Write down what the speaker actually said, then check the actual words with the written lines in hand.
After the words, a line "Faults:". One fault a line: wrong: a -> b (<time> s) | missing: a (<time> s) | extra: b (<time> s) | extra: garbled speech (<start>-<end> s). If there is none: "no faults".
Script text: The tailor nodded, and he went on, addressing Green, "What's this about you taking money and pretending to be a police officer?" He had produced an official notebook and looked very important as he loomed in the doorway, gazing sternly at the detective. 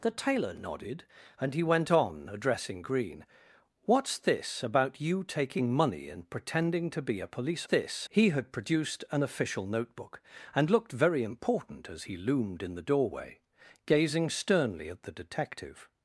The tailor nodded, and he went on, addressing Green, "What's this about you taking money and pretending to be a police this?" He had produced an official notebook and looked very important as he loomed in the doorway, gazing sternly at the detective.
Faults:
wrong: officer -> this (7.6 s)